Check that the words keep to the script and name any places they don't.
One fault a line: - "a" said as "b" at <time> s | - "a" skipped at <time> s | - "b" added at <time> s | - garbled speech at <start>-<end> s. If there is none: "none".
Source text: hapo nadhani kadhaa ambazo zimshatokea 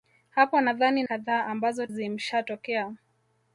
none